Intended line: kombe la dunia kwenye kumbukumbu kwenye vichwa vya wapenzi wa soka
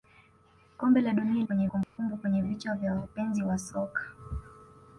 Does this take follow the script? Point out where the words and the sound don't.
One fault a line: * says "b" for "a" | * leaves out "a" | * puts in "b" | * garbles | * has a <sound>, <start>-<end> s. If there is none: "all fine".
* has a dropout, 1.8-2.0 s